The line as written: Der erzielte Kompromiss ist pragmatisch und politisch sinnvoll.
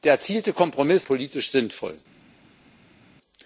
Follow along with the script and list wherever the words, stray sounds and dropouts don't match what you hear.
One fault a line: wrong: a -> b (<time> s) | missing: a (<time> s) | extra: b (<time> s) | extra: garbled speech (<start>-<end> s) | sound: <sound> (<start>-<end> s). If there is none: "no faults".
missing: ist pragmatisch und (1.1 s)